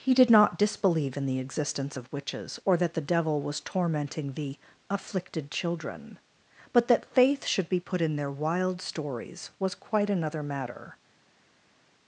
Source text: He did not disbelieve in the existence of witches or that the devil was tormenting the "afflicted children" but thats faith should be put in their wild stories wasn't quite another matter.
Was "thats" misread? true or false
true